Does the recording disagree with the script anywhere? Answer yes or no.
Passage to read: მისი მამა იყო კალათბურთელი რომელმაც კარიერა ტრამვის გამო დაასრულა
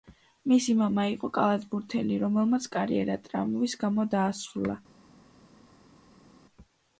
no